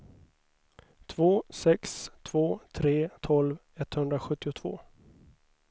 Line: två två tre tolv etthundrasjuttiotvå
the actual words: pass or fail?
fail